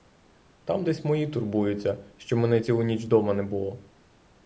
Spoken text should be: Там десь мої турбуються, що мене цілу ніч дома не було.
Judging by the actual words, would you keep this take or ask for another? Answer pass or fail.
pass